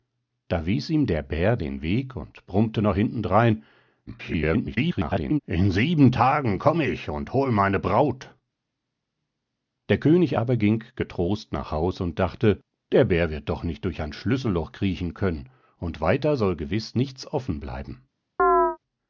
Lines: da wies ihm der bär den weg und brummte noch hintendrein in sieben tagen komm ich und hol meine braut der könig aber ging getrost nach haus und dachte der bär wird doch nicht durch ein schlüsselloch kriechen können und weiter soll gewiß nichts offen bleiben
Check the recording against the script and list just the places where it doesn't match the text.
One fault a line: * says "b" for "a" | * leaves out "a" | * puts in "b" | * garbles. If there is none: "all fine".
* garbles